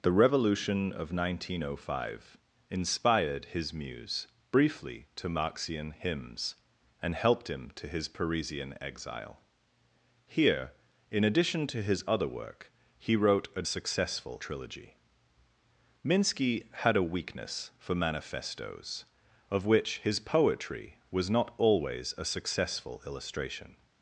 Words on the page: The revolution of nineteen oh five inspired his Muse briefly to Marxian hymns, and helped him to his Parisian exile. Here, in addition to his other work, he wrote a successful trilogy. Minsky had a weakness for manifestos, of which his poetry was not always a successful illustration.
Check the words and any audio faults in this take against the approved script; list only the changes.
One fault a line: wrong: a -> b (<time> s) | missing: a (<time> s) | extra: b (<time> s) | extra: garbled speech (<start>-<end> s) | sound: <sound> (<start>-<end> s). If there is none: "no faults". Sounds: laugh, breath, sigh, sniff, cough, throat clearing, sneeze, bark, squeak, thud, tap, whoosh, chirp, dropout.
no faults